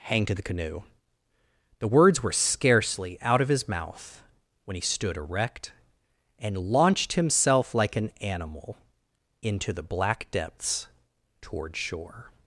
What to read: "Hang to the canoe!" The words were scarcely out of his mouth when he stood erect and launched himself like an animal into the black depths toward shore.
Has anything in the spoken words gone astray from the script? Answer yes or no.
no